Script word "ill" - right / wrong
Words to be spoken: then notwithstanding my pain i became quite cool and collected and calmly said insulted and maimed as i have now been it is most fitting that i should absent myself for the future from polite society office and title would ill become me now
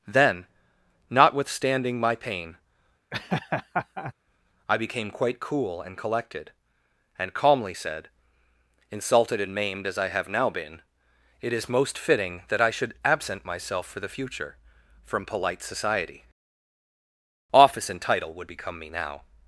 wrong